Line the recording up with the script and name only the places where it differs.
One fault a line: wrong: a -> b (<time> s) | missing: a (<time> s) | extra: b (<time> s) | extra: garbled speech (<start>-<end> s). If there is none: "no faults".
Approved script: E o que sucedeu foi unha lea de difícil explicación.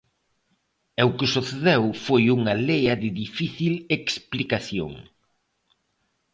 no faults